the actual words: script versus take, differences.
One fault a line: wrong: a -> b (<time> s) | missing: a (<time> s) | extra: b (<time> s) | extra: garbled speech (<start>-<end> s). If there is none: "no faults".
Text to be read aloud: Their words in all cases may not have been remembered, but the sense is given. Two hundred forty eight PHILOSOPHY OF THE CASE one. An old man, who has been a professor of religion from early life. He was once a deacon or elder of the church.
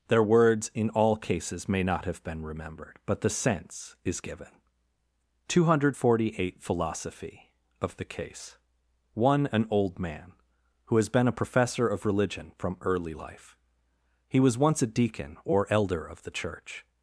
no faults